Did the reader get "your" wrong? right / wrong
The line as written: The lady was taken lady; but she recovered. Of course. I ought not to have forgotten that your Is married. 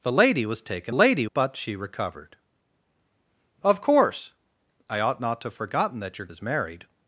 right